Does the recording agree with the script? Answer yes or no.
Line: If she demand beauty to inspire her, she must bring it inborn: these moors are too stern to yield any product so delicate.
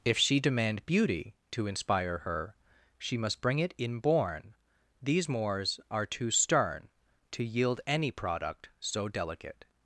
yes